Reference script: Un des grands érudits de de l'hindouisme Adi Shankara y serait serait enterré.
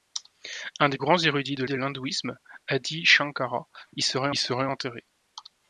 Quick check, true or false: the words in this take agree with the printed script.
true